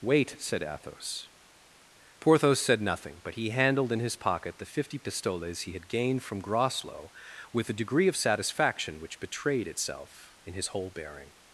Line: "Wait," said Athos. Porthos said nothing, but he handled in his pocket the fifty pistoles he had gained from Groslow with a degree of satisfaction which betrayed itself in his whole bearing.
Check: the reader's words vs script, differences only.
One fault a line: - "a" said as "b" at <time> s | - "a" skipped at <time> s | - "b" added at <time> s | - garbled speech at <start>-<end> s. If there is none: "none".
none